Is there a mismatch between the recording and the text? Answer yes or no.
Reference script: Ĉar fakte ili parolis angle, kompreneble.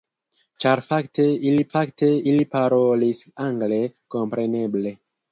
yes